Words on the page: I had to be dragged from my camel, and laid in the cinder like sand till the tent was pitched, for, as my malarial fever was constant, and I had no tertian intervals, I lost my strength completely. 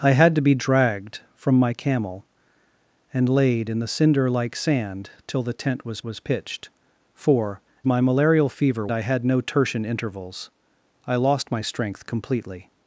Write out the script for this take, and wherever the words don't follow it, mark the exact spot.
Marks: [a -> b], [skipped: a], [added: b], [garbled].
I had to be dragged from my camel, and laid in the cinder like sand till the tent was [added: was] pitched, for, [skipped: as] my malarial fever [skipped: was constant, and] I had no tertian intervals, I lost my strength completely.